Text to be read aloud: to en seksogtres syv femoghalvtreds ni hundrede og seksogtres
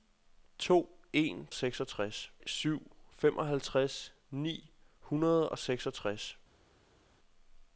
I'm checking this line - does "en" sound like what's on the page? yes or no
yes